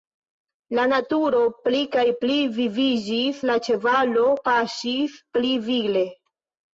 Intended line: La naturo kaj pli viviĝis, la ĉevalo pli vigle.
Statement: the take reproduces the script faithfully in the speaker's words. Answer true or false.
false